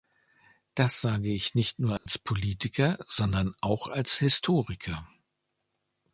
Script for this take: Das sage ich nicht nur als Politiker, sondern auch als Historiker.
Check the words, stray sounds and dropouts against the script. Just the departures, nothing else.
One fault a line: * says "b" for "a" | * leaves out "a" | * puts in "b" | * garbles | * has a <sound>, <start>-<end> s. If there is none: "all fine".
* has a dropout, 2.0-2.1 s